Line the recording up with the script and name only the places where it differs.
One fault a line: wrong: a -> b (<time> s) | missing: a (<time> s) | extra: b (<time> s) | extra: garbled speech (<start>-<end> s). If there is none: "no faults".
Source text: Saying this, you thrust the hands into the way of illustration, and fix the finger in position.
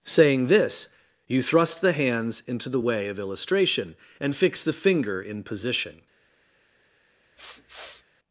no faults